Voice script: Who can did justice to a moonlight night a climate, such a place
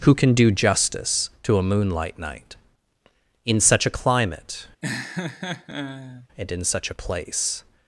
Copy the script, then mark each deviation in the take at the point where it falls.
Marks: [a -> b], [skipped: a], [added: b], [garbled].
Who can [did -> do] justice to a moonlight night [added: in such] a climate, [added: and in] such a place